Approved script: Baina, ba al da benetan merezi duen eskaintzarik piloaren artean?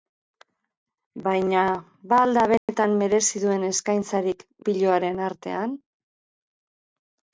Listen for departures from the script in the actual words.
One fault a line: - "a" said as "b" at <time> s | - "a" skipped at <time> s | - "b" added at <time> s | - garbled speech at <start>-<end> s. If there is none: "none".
none